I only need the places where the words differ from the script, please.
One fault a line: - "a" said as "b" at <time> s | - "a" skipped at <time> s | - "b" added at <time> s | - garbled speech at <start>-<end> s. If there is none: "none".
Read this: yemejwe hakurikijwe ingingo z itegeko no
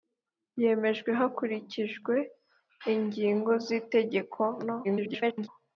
- garbled speech at 4.8-5.5 s